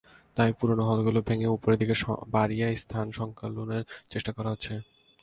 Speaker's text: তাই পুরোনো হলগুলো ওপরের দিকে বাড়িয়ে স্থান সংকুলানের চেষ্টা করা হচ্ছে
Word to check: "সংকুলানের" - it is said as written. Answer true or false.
true